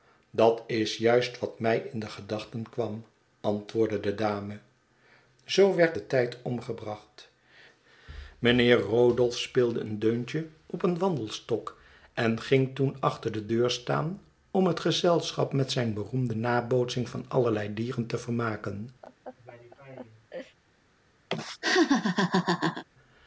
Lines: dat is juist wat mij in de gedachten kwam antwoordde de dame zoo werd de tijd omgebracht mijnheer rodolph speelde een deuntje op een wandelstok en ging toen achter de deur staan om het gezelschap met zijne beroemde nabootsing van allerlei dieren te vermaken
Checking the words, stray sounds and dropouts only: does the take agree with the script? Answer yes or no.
no